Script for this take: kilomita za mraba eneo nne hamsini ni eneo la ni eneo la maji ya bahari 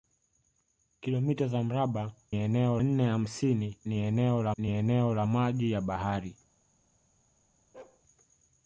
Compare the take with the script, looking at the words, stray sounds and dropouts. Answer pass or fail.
fail